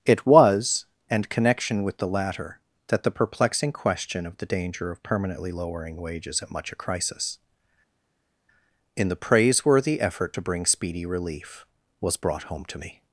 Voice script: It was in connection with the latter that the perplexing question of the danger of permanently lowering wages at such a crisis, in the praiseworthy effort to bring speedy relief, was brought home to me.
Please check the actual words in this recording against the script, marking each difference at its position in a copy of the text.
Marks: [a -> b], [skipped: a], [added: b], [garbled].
It was [in -> and] connection with the latter that the perplexing question of the danger of permanently lowering wages at [such -> much] a crisis, in the praiseworthy effort to bring speedy relief, was brought home to me.